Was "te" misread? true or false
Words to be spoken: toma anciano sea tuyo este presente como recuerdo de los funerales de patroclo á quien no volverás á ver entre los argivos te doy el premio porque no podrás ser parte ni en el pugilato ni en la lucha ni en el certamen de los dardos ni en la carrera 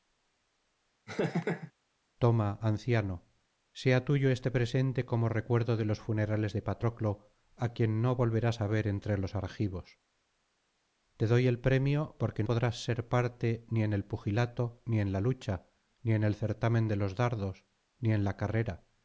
false